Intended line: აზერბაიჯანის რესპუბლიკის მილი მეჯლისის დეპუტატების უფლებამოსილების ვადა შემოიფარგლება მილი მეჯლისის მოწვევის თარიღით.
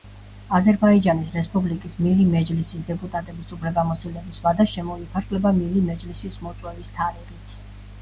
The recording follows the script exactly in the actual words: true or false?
true